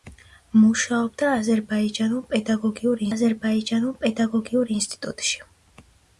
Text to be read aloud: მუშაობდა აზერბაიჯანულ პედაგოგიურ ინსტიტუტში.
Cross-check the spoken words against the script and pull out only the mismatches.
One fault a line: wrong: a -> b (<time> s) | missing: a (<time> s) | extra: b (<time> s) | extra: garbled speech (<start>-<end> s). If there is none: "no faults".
extra: აზერბაიჯანულ პედაგოგიურ (3.1 s)